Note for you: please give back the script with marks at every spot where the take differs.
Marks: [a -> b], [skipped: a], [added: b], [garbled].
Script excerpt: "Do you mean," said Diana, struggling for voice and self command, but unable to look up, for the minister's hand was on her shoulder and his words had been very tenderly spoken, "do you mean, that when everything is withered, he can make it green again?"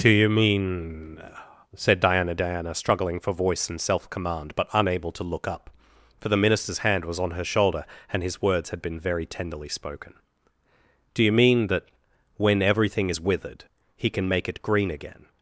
"Do you mean," said Diana, [added: Diana] struggling for voice and self command, but unable to look up, for the minister's hand was on her shoulder and his words had been very tenderly spoken, "do you mean, that when everything is withered, he can make it green again?"